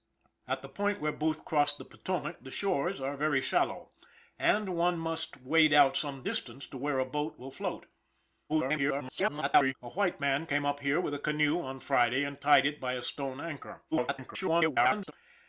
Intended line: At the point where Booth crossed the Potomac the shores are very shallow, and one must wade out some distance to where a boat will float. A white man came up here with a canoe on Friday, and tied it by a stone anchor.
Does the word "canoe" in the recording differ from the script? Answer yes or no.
no